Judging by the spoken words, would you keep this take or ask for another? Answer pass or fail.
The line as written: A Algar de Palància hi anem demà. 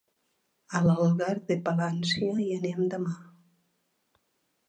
pass